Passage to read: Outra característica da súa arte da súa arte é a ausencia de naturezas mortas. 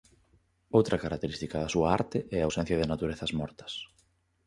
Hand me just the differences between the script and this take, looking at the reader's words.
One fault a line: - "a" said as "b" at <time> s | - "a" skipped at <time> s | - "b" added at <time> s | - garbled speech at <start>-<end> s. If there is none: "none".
- "da súa arte" skipped at 2.2 s